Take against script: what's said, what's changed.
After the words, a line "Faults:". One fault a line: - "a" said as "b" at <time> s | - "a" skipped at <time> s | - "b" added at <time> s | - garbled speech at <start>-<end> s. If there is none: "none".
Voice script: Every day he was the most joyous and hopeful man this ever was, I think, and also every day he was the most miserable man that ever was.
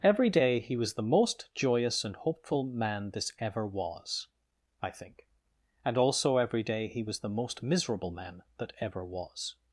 Every day he was the most joyous and hopeful man this ever was, I think, and also every day he was the most miserable man that ever was.
Faults:
none